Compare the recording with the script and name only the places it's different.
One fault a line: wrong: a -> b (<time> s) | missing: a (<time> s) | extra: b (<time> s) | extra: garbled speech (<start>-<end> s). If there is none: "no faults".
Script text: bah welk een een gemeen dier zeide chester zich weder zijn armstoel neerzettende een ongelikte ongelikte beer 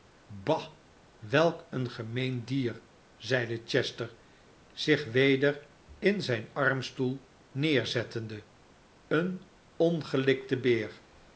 missing: een (1.9 s)
extra: in (6.0 s)
missing: ongelikte (10.6 s)